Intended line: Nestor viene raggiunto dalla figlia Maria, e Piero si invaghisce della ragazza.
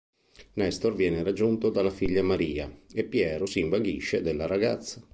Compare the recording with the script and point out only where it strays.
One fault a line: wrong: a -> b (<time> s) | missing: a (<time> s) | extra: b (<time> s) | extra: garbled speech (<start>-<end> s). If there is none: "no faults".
no faults